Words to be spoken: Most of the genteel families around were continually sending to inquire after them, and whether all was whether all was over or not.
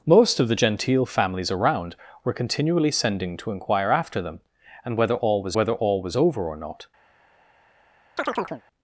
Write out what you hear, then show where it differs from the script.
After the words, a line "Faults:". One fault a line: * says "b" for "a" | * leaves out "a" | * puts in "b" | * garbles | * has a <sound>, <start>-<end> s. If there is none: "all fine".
Most of the genteel families around were continually sending to inquire after them, and whether all was whether all was over or not.
Faults:
* has a chirp, 8.2-8.6 s